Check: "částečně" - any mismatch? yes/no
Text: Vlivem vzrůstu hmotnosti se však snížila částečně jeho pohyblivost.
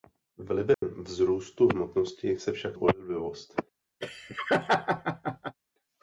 yes